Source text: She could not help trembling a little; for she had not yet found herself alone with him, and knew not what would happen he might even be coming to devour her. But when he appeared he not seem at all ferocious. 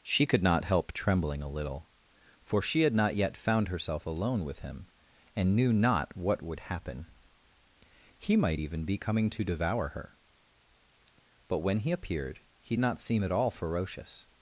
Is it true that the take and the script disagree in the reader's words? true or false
false